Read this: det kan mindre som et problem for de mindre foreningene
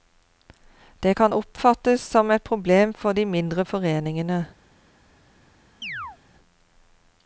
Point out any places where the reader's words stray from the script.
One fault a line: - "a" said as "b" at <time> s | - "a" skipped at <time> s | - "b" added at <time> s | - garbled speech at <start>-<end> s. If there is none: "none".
- "mindre" said as "oppfattes" at 1.3 s